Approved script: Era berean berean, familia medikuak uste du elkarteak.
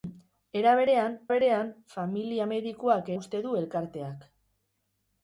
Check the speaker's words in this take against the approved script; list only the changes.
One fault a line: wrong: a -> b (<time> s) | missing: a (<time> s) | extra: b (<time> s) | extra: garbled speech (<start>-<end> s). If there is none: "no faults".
no faults